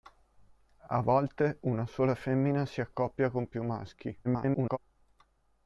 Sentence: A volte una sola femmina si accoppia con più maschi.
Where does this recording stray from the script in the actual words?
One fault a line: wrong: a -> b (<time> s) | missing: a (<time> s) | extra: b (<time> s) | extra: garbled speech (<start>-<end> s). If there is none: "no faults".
extra: garbled speech (4.2-4.8 s)